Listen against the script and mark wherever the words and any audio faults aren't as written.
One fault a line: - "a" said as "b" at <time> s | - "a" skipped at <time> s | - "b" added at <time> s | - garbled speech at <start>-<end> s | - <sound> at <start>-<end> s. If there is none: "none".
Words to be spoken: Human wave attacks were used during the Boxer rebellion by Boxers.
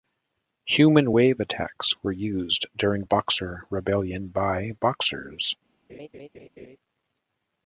- "the" skipped at 3.0 s
- laugh at 5.9-6.8 s